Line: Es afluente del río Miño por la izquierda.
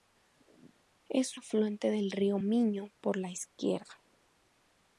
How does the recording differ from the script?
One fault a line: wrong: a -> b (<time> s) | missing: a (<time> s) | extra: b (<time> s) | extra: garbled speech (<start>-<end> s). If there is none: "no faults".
no faults